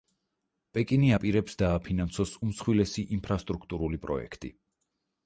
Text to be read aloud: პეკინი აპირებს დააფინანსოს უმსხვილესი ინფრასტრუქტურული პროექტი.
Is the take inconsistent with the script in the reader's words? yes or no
no